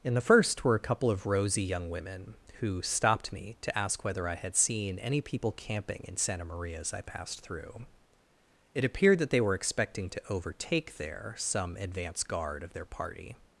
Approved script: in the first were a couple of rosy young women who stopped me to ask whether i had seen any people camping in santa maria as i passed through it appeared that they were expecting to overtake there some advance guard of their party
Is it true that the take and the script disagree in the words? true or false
false